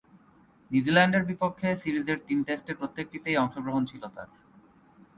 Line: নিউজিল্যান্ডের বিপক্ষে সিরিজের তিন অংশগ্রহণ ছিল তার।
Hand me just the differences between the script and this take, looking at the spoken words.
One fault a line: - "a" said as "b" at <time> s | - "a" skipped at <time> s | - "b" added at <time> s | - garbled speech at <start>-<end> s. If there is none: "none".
- "টেস্টের প্রত্যেকটিতেই" added at 2.5 s